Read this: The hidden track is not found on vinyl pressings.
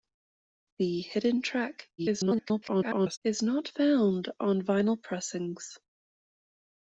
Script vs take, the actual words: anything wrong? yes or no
yes